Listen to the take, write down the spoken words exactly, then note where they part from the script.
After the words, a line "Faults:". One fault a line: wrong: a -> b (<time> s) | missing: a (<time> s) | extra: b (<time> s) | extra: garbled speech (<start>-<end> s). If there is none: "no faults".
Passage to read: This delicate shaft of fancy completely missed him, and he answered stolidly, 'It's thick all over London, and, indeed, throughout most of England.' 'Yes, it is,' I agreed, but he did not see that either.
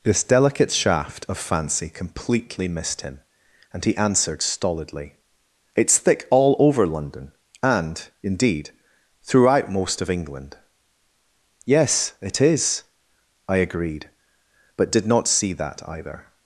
This delicate shaft of fancy completely missed him, and he answered stolidly, 'It's thick all over London, and, indeed, throughout most of England.' 'Yes, it is,' I agreed, but did not see that either.
Faults:
missing: he (14.9 s)